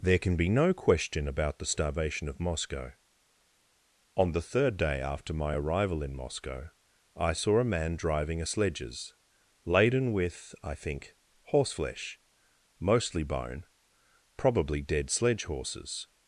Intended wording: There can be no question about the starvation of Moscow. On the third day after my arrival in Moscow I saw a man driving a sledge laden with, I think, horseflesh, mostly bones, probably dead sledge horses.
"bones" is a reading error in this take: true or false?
true